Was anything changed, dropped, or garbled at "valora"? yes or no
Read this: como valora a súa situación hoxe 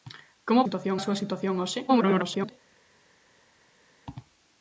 yes